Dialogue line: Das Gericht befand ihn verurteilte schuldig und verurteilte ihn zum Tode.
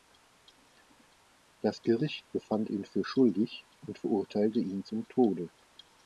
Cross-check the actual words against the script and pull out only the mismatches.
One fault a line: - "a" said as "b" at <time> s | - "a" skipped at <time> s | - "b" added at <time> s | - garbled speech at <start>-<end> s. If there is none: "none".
- "verurteilte" said as "für" at 2.9 s